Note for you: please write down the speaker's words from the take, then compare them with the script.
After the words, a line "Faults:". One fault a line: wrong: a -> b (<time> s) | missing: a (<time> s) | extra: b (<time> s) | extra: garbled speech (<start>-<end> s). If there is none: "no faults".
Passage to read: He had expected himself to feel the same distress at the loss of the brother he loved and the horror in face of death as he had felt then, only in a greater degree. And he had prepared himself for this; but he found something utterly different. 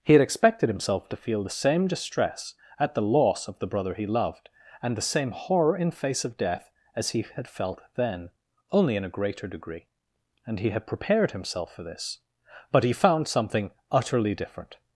He had expected himself to feel the same distress at the loss of the brother he loved and the same horror in face of death as he had felt then, only in a greater degree. And he had prepared himself for this; but he found something utterly different.
Faults:
extra: same (5.0 s)